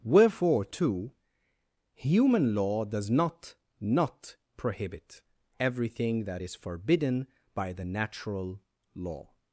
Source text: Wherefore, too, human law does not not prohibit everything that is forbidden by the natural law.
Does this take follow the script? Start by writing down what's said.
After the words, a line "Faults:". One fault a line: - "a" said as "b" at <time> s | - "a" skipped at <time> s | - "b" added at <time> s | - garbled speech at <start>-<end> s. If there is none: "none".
Wherefore, too, human law does not not prohibit everything that is forbidden by the natural law.
Faults:
none